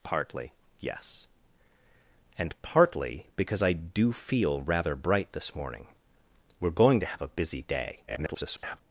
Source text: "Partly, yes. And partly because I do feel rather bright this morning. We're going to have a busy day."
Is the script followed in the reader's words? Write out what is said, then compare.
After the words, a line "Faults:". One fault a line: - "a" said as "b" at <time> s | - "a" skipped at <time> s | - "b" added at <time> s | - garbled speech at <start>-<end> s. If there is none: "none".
"Partly, yes. And partly because I do feel rather bright this morning. We're going to have a busy day." [garbled]
Faults:
- garbled speech at 8.1-8.8 s